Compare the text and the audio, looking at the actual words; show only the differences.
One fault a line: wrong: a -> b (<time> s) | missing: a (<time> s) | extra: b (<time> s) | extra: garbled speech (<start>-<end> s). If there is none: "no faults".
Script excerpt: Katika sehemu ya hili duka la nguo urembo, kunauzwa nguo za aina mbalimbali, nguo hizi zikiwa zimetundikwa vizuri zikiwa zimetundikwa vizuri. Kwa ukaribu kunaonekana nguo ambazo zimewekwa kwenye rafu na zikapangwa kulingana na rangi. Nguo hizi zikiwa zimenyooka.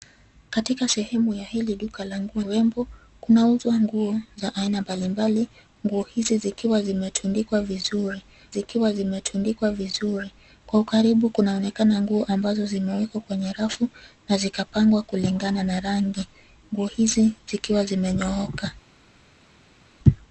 no faults